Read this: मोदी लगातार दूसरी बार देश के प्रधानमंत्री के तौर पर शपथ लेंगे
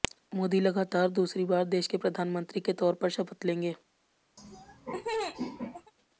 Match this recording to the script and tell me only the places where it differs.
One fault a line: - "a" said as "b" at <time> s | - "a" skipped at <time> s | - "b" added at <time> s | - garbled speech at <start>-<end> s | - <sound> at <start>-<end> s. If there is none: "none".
- laugh at 4.4-5.9 s